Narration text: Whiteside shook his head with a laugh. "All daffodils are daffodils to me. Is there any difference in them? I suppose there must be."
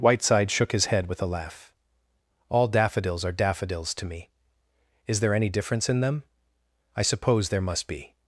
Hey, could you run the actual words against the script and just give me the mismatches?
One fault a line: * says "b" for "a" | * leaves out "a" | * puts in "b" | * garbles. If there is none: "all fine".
all fine